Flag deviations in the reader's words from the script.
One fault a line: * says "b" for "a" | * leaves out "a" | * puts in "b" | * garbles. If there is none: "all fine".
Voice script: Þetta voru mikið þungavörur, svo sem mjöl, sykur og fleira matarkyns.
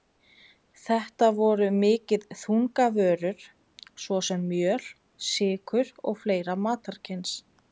all fine